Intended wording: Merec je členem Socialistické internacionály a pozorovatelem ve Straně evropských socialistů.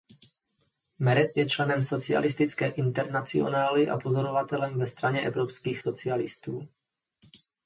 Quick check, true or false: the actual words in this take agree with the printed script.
true